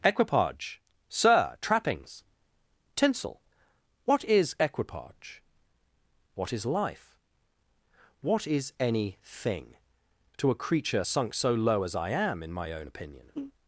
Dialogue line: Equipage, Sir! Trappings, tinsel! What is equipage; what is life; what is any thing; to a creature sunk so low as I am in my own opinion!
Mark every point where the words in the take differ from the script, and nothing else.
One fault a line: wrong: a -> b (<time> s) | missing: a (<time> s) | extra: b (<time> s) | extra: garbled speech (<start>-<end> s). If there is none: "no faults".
no faults